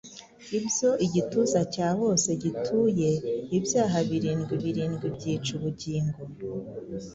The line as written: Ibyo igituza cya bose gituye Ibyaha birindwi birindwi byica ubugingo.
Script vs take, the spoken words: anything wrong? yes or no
no